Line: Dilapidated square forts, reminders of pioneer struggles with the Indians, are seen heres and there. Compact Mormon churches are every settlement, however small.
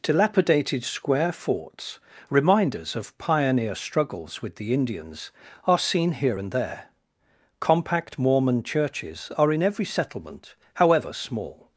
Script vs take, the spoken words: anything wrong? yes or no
yes